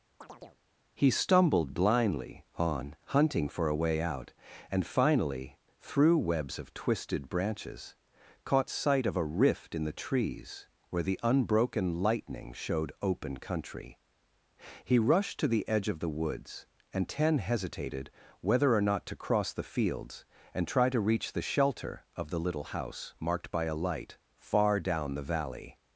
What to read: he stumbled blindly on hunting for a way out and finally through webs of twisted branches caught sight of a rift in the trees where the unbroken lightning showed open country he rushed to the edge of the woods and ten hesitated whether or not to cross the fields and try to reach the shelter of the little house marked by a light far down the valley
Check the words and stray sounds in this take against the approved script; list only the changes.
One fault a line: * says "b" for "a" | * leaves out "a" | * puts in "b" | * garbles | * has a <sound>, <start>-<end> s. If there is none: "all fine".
* has a chirp, 0.2-0.6 s